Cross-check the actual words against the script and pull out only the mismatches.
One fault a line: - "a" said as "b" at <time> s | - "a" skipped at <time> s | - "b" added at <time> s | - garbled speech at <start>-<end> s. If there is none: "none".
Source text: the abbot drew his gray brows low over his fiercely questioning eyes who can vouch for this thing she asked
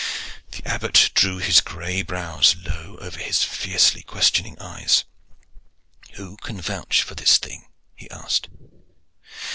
- "she" said as "he" at 7.9 s